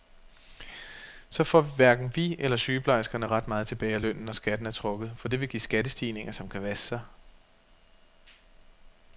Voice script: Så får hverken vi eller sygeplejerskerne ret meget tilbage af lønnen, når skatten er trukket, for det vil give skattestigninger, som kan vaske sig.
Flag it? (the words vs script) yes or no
no